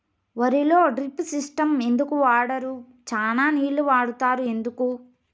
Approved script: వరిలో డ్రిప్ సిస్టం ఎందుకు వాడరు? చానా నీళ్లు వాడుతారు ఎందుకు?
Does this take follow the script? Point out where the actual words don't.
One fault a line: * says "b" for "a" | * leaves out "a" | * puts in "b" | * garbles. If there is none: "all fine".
all fine